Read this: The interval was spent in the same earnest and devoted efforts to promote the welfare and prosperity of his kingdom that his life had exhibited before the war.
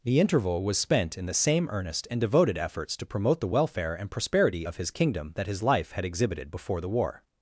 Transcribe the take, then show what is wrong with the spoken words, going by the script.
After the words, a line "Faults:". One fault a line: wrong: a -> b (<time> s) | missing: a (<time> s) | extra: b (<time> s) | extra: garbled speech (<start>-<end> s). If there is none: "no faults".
The interval was spent in the same earnest and devoted efforts to promote the welfare and prosperity of his kingdom that his life had exhibited before the war.
Faults:
no faults